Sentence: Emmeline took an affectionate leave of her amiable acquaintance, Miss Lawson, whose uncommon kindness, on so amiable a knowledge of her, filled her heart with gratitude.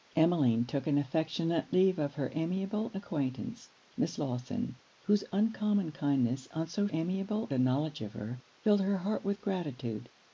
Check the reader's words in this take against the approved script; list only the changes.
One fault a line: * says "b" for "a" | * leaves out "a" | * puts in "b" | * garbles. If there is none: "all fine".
all fine